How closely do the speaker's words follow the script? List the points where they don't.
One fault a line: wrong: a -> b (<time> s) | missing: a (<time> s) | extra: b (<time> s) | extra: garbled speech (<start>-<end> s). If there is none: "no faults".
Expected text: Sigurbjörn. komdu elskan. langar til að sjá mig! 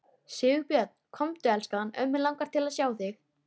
extra: ömmu (2.0 s)
wrong: mig -> þig (3.0 s)